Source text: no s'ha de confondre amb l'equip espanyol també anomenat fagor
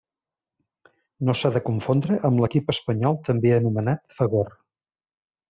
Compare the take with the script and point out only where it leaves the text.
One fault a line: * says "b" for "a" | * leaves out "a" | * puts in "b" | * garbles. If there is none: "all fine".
all fine